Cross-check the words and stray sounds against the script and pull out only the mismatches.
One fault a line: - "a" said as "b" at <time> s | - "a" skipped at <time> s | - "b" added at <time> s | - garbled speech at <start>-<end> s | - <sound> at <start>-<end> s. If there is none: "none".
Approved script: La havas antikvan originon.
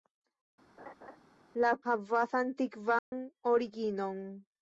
- laugh at 0.8-1.2 s
- dropout at 3.0-3.1 s